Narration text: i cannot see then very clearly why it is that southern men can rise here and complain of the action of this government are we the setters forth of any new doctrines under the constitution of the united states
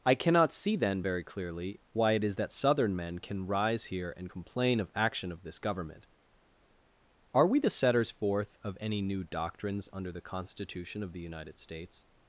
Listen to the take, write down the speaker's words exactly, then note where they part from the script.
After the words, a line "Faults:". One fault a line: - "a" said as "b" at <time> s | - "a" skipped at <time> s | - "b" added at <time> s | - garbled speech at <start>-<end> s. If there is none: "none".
i cannot see then very clearly why it is that southern men can rise here and complain of action of this government are we the setters forth of any new doctrines under the constitution of the united states
Faults:
- "the" skipped at 4.9 s